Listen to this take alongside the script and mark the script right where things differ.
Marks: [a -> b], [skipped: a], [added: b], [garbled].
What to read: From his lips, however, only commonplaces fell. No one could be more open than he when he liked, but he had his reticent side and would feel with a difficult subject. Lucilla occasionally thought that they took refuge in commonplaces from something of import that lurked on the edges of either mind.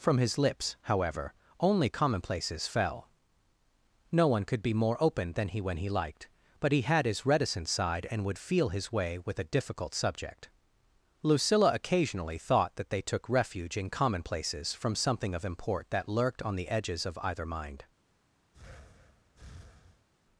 From his lips, however, only commonplaces fell. No one could be more open than he when he liked, but he had his reticent side and would feel [added: his way] with a difficult subject. Lucilla occasionally thought that they took refuge in commonplaces from something of import that lurked on the edges of either mind.